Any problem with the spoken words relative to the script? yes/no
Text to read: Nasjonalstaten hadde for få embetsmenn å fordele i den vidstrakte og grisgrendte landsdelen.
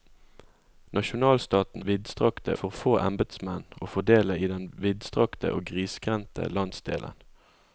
yes